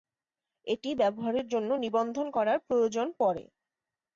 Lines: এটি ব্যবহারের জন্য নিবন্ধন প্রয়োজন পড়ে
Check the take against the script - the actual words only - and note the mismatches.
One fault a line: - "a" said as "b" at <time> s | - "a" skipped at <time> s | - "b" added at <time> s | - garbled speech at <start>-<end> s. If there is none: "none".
- "করার" added at 2.3 s